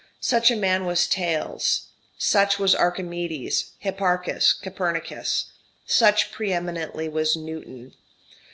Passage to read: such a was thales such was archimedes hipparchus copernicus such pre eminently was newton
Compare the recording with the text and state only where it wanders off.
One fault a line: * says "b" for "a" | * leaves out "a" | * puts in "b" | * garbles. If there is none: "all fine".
* puts in "man"